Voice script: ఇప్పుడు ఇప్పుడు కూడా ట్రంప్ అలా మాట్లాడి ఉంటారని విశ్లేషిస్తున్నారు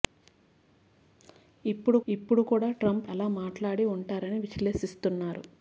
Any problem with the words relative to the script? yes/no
no